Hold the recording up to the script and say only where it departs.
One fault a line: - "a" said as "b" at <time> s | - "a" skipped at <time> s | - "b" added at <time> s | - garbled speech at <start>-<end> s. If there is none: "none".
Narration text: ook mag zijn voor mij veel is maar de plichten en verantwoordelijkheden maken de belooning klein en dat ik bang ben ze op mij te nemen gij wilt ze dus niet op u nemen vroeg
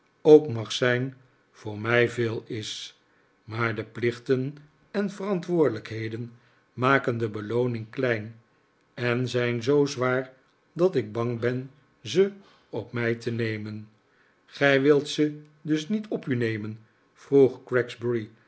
- "zijn zoo zwaar" added at 9.3 s